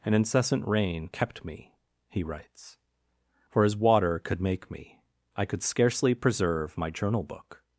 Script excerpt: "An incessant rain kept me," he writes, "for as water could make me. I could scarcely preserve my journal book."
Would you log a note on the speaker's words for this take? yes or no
no